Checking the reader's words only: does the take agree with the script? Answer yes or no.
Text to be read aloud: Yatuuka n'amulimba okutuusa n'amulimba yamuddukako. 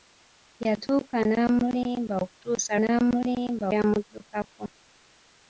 yes